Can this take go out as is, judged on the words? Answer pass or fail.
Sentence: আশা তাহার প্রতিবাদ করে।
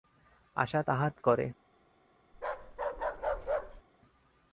fail